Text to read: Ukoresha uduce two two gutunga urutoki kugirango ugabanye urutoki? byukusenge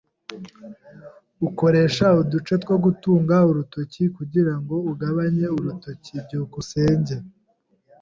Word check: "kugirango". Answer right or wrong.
right